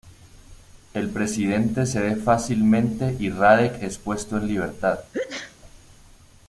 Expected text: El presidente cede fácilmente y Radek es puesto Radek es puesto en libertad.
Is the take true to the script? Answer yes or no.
no